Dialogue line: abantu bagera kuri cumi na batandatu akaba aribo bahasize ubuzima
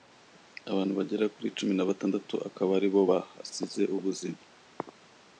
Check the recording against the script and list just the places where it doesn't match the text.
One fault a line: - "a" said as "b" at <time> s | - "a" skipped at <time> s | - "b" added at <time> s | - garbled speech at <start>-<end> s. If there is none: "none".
none